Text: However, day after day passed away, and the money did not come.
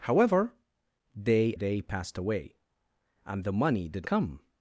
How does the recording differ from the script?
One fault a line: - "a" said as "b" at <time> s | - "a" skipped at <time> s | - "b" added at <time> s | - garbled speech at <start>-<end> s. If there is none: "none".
- "after" skipped at 1.5 s
- "not" skipped at 4.1 s